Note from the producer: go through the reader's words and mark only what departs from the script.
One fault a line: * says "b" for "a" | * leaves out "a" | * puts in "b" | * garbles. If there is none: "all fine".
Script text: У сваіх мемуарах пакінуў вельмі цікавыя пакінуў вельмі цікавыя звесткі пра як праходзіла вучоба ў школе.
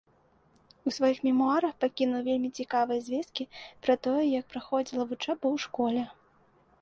* leaves out "пакінуў вельмі цікавыя"
* puts in "тое"